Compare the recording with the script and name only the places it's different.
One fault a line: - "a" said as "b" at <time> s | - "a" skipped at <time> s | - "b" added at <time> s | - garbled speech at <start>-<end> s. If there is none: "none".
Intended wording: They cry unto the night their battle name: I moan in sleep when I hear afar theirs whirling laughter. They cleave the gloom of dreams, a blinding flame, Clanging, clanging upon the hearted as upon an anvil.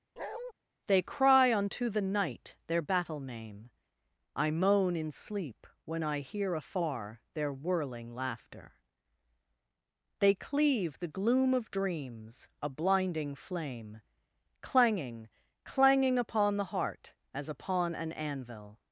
- "theirs" said as "their" at 7.3 s
- "hearted" said as "heart" at 16.6 s